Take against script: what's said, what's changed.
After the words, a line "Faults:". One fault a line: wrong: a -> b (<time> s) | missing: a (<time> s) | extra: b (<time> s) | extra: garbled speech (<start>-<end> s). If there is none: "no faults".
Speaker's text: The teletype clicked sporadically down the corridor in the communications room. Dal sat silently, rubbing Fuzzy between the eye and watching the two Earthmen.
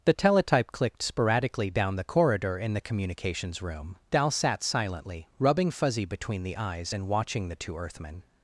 The teletype clicked sporadically down the corridor in the communications room. Dal sat silently, rubbing Fuzzy between the eyes and watching the two Earthmen.
Faults:
wrong: eye -> eyes (6.6 s)